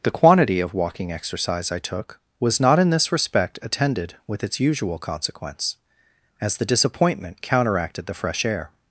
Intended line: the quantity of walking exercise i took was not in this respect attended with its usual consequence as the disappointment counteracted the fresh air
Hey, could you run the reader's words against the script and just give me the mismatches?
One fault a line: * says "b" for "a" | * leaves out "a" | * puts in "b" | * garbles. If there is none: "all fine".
all fine